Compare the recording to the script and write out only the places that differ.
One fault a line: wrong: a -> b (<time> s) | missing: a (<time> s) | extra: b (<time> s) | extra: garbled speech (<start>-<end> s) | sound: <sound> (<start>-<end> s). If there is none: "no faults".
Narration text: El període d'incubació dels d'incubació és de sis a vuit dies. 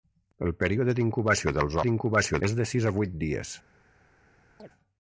sound: chirp (4.6-4.7 s)